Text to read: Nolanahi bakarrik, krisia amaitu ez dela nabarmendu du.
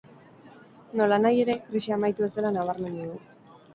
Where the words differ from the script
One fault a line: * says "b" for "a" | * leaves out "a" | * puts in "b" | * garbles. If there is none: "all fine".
* says "ere" for "bakarrik"